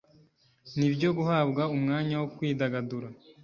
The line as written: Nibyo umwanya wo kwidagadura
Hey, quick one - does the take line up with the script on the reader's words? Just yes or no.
no